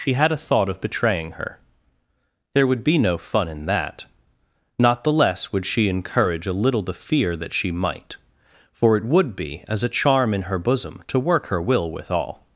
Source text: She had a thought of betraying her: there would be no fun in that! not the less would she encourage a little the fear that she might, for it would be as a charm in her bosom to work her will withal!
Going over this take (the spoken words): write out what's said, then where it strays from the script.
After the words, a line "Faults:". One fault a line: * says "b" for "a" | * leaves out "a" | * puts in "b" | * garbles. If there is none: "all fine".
She had a thought of betraying her: there would be no fun in that! not the less would she encourage a little the fear that she might, for it would be as a charm in her bosom to work her will withal!
Faults:
all fine